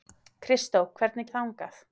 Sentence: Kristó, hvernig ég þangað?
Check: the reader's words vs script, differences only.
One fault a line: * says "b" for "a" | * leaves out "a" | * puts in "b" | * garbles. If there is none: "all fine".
all fine